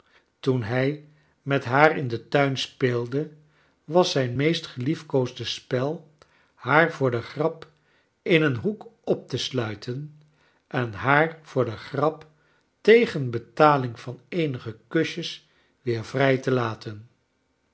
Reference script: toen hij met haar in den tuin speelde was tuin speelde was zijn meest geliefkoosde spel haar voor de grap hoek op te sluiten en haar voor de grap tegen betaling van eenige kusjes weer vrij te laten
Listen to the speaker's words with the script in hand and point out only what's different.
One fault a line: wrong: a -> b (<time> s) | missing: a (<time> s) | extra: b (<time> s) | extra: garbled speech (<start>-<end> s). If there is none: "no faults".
missing: tuin speelde was (4.1 s)
extra: in een (8.2 s)